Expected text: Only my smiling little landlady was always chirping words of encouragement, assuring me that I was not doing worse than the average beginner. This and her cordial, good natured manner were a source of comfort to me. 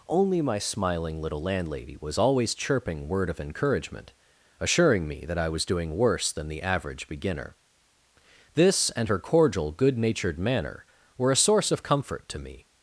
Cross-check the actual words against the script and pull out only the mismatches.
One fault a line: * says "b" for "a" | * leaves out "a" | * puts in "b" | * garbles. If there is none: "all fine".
* says "word" for "words"
* leaves out "not"